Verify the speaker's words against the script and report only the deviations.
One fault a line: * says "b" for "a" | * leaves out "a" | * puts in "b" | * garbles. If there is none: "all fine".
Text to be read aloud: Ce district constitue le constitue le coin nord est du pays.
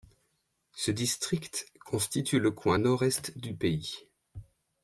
* leaves out "constitue le"